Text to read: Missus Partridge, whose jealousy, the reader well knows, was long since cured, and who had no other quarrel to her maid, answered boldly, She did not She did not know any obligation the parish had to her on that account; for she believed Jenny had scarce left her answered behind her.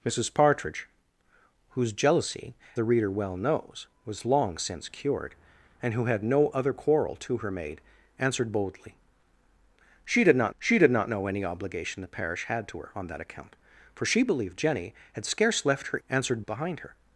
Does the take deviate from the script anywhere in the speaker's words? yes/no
no